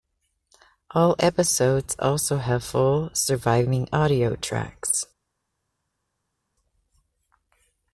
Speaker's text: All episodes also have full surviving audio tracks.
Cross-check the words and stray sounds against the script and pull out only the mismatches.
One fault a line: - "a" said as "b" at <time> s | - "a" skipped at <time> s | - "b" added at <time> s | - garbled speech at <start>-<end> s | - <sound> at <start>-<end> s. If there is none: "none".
none